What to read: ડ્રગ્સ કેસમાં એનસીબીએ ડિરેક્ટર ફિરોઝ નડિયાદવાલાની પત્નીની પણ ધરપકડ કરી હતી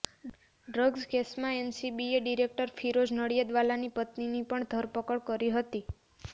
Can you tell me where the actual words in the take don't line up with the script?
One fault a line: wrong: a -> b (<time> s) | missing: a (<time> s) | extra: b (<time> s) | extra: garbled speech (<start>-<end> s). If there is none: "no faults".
no faults